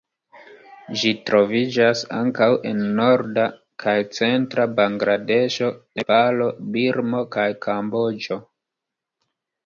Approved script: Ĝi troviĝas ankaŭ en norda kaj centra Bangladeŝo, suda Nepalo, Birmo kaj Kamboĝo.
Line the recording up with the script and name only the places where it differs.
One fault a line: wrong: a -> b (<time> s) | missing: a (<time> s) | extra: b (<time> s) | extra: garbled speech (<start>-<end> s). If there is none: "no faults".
missing: suda (5.7 s)